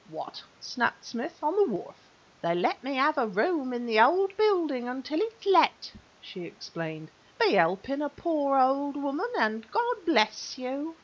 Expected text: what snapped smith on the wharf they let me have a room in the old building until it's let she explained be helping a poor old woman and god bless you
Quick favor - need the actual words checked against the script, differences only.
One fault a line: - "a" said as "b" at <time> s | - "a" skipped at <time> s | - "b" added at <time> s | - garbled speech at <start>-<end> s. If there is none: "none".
none